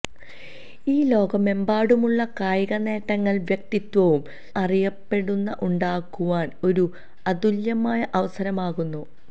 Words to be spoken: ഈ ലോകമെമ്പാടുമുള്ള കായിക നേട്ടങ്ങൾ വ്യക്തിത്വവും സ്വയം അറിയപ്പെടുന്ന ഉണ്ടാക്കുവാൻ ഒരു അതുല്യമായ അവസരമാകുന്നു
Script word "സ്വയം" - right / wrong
wrong